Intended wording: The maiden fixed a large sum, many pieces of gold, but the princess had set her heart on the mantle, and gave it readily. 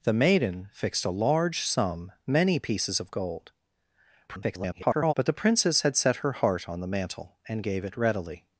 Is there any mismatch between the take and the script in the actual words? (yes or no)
yes